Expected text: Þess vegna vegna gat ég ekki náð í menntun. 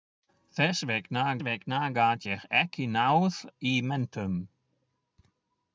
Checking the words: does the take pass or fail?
pass